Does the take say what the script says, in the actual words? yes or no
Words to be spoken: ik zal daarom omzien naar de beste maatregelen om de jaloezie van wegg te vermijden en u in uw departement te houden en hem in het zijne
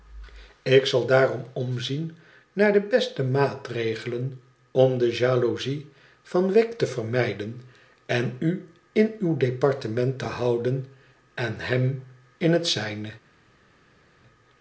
yes